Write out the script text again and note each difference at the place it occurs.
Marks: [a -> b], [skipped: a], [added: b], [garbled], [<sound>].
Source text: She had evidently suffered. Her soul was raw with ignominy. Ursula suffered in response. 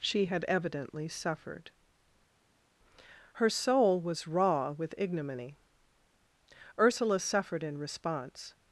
She had evidently suffered. Her soul was raw with ignominy. Ursula suffered in response.